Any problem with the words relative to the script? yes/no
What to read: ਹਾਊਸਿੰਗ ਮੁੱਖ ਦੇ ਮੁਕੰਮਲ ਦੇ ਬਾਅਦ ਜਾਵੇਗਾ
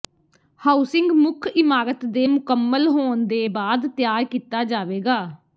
yes